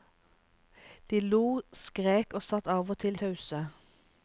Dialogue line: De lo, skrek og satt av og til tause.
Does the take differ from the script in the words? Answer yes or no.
no